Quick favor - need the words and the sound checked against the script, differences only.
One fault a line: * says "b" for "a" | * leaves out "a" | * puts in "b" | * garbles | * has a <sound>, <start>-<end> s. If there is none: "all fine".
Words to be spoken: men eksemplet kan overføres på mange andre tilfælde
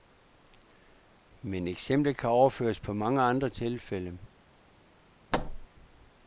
* has a thud, 5.3-5.7 s